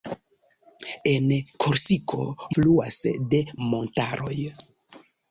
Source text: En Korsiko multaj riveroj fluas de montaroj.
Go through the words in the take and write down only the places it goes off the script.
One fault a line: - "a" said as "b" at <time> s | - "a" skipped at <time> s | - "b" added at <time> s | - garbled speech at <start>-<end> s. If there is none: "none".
- "multaj riveroj" skipped at 2.2 s